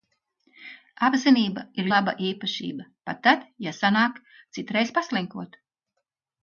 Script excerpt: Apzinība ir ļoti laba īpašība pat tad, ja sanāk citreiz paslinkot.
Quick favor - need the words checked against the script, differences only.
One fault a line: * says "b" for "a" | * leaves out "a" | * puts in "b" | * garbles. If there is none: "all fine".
* leaves out "ļoti"